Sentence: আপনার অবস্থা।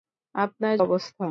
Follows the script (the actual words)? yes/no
yes